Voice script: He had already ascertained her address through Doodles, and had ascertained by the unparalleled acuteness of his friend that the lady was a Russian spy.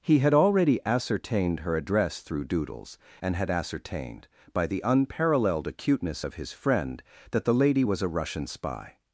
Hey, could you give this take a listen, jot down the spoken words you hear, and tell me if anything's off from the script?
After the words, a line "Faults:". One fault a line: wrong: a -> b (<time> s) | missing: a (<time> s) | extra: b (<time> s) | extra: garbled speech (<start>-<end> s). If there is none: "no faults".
He had already ascertained her address through Doodles, and had ascertained by the unparalleled acuteness of his friend that the lady was a Russian spy.
Faults:
no faults